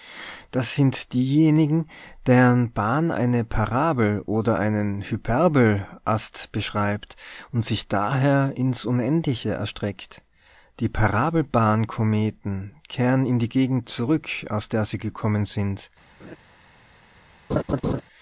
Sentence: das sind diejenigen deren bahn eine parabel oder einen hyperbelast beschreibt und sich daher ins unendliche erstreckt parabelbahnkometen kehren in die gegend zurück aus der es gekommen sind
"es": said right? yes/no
no